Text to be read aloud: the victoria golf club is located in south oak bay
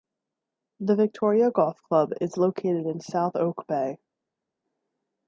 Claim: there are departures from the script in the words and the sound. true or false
false